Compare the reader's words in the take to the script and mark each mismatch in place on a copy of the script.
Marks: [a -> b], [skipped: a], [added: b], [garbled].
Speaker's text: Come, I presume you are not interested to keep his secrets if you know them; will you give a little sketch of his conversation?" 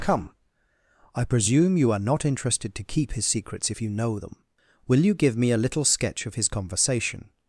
Come, I presume you are not interested to keep his secrets if you know them; will you give [added: me] a little sketch of his conversation?"